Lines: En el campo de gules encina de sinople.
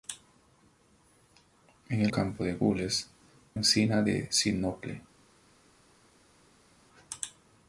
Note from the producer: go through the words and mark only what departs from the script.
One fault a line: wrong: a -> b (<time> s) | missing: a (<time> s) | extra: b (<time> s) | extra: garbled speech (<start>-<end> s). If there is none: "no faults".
no faults